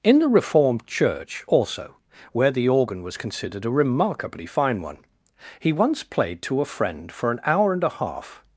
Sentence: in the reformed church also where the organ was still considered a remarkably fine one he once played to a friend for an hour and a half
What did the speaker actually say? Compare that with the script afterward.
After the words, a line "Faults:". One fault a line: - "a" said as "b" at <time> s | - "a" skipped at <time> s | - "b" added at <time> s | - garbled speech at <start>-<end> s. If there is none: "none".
in the reformed church also where the organ was considered a remarkably fine one he once played to a friend for an hour and a half
Faults:
- "still" skipped at 3.2 s